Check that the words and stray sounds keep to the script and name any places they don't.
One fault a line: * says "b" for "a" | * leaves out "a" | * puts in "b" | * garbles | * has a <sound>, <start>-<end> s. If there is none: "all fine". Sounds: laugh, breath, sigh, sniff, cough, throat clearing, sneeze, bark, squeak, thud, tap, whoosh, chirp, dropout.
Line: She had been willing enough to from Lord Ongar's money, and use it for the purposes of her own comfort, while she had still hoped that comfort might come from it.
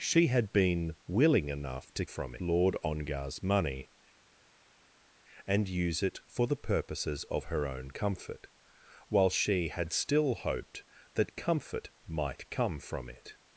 all fine